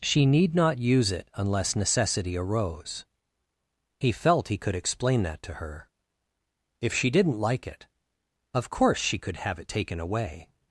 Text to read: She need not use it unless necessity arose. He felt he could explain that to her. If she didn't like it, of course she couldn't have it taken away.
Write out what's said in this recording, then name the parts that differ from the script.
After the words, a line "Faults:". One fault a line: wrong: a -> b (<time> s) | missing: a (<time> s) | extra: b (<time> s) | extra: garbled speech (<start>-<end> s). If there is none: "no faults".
She need not use it unless necessity arose. He felt he could explain that to her. If she didn't like it, of course she could have it taken away.
Faults:
wrong: couldn't -> could (9.2 s)